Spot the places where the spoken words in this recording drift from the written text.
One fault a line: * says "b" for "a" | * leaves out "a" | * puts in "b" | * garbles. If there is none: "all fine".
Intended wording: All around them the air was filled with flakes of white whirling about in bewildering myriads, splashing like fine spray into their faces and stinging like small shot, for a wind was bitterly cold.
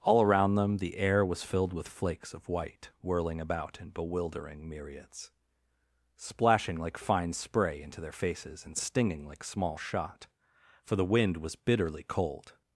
* says "the" for "a"